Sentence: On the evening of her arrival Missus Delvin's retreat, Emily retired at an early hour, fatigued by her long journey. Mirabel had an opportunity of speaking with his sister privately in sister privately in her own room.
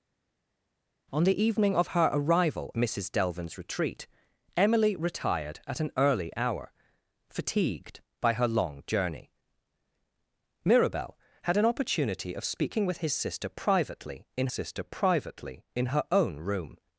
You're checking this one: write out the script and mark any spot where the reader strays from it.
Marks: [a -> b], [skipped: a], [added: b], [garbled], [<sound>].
On the evening of her arrival Missus Delvin's retreat, Emily retired at an early hour, fatigued by her long journey. Mirabel had an opportunity of speaking with his sister privately in sister privately in her own room.